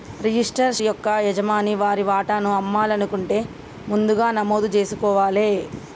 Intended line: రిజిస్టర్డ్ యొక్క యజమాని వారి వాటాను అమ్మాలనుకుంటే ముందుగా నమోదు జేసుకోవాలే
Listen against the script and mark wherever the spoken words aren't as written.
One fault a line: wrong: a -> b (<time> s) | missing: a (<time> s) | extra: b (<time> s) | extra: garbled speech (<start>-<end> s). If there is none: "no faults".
no faults